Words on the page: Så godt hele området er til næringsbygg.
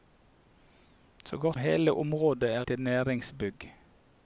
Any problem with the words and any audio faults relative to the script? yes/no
no